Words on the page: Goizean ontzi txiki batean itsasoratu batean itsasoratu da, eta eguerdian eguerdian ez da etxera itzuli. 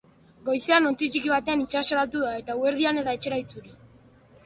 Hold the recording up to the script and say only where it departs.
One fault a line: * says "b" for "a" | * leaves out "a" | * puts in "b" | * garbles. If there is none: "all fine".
* leaves out "batean itsasoratu"
* leaves out "eguerdian"